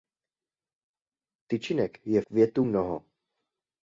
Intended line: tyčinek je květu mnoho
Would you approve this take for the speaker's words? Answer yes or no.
yes